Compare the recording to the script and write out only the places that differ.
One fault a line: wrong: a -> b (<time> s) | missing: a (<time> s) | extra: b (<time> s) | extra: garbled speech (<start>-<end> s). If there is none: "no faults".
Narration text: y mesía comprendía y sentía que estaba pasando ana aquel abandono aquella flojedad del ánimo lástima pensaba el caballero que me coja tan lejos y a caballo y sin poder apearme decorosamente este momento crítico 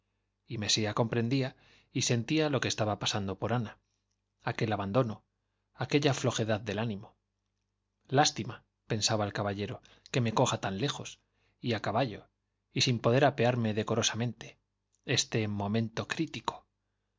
extra: lo (2.5 s)
extra: por (3.4 s)